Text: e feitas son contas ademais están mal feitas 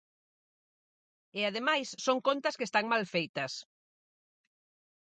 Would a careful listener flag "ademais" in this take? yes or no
yes